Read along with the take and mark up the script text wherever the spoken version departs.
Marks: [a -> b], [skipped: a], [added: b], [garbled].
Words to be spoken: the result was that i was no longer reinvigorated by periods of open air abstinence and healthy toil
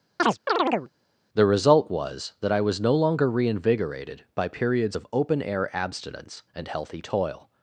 the result was that i was no longer reinvigorated by periods of open air abstinence and healthy toil